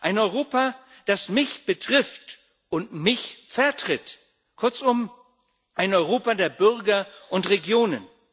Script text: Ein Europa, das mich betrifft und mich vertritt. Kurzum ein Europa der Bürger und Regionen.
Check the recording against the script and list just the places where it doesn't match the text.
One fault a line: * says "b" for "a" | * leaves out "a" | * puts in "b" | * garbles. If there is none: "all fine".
all fine